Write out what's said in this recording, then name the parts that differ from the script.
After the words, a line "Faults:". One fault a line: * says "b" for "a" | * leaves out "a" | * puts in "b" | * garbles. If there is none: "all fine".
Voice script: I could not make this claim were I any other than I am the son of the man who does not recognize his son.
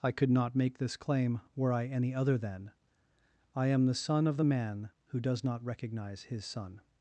I could not make this claim were I any other than I am the son of the man who does not recognize his son.
Faults:
all fine